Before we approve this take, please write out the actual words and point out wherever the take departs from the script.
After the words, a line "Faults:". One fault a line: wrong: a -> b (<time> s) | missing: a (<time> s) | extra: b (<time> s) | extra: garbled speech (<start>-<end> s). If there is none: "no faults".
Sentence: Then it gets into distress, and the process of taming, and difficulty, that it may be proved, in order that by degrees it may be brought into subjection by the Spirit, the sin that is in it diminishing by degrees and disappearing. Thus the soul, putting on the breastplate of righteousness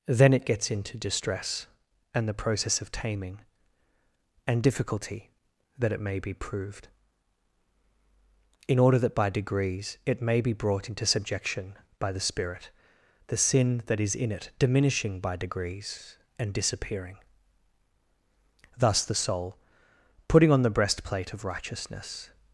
Then it gets into distress, and the process of taming, and difficulty, that it may be proved, in order that by degrees it may be brought into subjection by the Spirit, the sin that is in it diminishing by degrees and disappearing. Thus the soul, putting on the breastplate of righteousness
Faults:
no faults